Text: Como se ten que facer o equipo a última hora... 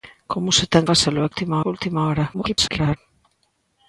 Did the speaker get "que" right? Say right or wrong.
wrong